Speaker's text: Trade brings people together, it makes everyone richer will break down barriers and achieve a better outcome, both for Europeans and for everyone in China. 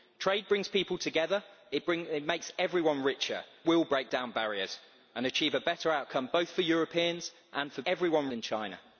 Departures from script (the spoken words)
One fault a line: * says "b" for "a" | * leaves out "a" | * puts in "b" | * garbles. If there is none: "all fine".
all fine